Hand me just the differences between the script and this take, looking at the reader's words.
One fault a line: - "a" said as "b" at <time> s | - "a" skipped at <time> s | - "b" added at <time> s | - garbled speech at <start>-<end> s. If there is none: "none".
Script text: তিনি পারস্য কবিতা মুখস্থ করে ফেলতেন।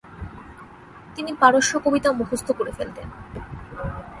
none